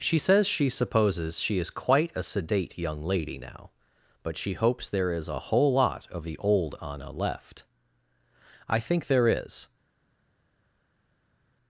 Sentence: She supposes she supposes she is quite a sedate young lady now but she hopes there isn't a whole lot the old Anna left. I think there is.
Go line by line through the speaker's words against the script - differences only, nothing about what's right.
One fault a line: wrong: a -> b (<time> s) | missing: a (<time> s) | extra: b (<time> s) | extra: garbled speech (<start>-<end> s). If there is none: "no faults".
wrong: supposes -> says (0.2 s)
wrong: isn't -> is (5.1 s)
extra: of (6.1 s)